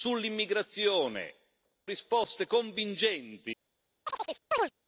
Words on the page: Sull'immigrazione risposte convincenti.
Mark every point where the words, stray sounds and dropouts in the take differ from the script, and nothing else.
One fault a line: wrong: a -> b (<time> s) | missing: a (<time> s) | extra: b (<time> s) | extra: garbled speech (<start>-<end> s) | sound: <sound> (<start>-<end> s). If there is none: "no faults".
sound: chirp (4.1-4.7 s)